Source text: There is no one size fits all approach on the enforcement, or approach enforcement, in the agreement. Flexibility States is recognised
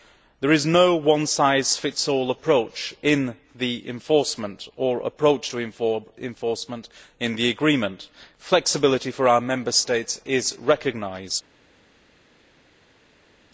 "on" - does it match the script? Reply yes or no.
no